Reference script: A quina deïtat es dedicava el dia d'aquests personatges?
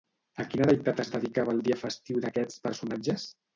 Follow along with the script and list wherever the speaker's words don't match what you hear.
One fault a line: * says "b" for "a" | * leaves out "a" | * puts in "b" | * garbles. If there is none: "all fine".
* puts in "festiu"